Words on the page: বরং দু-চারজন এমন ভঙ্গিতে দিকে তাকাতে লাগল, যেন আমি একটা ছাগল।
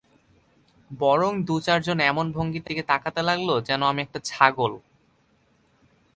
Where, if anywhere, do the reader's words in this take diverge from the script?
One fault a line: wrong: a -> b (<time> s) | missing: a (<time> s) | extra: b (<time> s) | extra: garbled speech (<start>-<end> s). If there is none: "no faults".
no faults